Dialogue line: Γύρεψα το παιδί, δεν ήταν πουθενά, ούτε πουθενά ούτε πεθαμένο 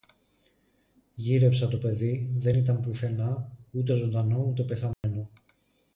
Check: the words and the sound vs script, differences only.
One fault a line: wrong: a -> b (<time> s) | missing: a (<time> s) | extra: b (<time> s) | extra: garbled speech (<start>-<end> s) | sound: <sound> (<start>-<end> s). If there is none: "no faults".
wrong: πουθενά -> ζωντανό (3.9 s)
sound: dropout (4.9-5.0 s)